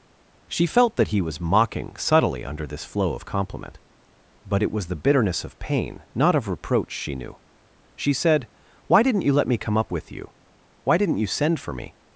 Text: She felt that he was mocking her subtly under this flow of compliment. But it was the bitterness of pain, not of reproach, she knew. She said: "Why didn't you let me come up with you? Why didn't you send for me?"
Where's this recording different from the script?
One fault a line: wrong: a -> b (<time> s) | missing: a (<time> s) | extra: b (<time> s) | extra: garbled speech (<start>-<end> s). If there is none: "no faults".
missing: her (1.9 s)